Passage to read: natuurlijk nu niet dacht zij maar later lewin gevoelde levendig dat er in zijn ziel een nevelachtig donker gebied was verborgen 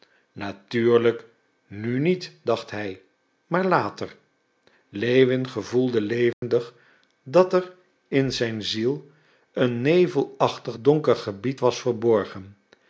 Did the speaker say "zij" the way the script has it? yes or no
no